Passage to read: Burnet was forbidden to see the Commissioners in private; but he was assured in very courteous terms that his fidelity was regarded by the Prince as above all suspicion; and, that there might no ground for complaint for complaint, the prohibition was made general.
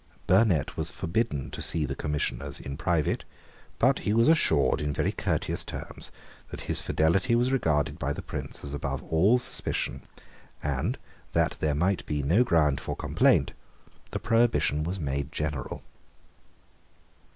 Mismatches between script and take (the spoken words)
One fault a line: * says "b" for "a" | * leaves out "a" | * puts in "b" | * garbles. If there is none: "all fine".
* puts in "be"
* leaves out "for complaint"